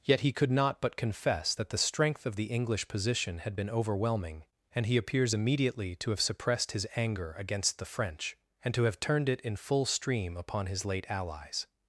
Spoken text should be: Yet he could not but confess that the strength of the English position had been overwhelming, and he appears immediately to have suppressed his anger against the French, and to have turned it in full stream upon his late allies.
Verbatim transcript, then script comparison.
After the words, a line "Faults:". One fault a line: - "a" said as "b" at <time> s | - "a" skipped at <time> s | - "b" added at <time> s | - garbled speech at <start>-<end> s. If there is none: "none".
Yet he could not but confess that the strength of the English position had been overwhelming, and he appears immediately to have suppressed his anger against the French, and to have turned it in full stream upon his late allies.
Faults:
none